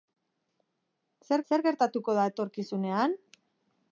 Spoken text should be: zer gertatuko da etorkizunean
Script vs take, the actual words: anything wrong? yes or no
yes